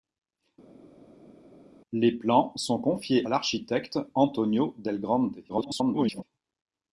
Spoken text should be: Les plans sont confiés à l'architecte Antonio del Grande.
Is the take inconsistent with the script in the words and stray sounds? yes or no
yes